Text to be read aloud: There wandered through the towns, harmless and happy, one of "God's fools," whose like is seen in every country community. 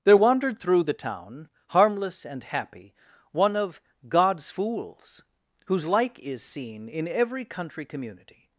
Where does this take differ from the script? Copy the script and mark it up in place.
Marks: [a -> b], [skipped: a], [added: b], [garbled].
There wandered through the [towns, -> town] harmless and happy, one of "God's fools," whose like is seen in every country community.